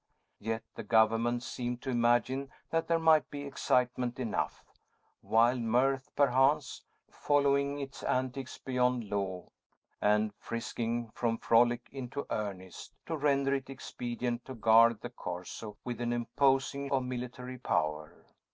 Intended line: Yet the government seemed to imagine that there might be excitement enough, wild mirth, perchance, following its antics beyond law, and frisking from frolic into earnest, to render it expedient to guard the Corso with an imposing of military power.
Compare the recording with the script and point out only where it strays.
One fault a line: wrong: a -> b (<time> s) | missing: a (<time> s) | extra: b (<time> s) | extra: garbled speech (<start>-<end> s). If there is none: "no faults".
no faults